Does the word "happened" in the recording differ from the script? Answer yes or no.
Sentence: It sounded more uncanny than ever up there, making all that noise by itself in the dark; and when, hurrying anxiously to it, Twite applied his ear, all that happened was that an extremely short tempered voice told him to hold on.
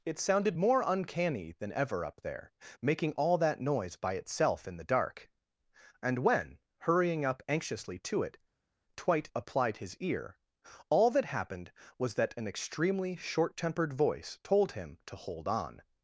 no